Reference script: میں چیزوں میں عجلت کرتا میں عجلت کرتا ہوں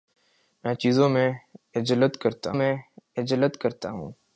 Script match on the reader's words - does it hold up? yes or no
yes